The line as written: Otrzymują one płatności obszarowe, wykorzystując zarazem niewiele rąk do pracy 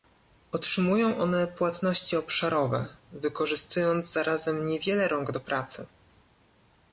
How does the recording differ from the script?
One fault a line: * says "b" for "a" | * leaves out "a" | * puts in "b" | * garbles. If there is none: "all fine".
all fine